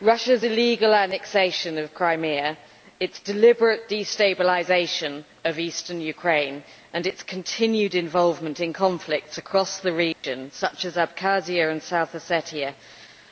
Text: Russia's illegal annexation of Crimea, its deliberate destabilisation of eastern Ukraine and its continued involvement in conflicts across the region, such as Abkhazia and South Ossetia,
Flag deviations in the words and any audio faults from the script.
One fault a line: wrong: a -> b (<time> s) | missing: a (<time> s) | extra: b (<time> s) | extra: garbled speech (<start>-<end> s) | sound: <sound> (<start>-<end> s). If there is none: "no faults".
sound: dropout (10.1-10.2 s)